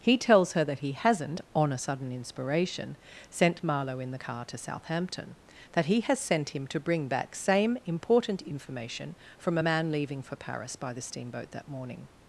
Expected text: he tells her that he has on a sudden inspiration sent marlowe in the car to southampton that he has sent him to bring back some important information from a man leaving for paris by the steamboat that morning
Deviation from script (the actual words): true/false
true